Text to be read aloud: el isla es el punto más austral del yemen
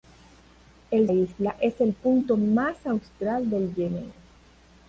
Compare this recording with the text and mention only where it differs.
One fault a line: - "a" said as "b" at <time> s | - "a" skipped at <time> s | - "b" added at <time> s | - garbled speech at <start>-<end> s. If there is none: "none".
none